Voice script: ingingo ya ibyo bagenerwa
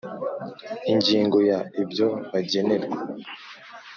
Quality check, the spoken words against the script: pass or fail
pass